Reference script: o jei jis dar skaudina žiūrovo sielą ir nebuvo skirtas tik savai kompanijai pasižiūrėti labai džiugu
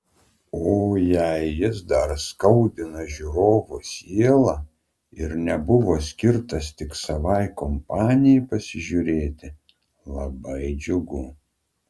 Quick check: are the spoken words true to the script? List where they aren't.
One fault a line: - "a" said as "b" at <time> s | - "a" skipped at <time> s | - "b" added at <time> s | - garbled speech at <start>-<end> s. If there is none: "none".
none